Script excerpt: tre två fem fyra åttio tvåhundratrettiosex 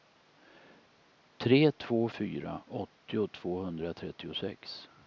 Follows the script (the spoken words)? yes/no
no